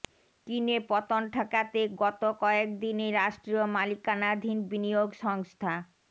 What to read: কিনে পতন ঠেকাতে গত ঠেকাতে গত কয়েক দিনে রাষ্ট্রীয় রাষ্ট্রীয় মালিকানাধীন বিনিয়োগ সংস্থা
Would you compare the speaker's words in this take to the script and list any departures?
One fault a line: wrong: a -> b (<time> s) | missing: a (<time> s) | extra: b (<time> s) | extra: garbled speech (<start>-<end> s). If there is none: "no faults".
missing: ঠেকাতে গত (2.2 s)
missing: রাষ্ট্রীয় (3.6 s)